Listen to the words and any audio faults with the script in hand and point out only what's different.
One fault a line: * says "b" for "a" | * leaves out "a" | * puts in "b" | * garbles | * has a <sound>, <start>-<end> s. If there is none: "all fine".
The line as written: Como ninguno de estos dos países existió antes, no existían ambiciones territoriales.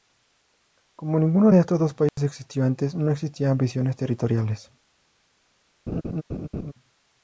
* has a dropout, 2.1-2.2 s
* has a laugh, 5.9-6.7 s